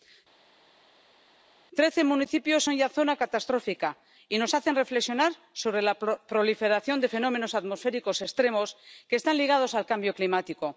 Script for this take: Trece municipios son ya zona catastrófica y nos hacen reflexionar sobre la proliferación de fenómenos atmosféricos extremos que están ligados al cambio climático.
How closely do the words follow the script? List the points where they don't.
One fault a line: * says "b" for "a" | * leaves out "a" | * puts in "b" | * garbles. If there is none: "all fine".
all fine